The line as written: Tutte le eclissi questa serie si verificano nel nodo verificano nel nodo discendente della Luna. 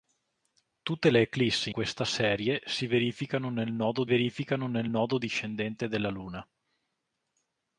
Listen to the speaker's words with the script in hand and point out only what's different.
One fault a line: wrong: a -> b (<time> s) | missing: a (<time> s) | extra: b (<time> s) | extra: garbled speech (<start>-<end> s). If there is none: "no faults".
no faults